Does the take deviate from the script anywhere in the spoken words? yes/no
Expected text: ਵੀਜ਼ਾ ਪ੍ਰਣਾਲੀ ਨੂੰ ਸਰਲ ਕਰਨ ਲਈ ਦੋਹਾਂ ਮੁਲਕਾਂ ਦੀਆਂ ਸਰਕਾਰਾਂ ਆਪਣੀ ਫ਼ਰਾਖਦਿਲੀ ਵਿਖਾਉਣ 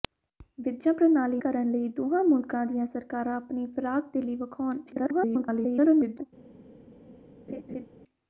yes